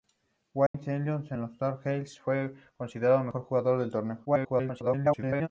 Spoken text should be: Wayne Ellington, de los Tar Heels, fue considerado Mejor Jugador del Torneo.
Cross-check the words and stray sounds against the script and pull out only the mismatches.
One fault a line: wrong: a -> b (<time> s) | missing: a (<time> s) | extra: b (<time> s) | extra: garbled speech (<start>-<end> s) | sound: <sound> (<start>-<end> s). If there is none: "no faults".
sound: dropout (0.7-0.7 s)
extra: garbled speech (4.2-5.5 s)